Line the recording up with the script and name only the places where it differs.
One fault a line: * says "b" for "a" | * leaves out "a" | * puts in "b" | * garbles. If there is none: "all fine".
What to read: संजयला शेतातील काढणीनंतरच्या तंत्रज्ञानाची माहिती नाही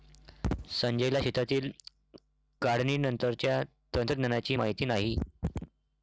all fine